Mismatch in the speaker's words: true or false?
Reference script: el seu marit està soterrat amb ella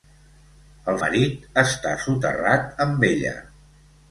true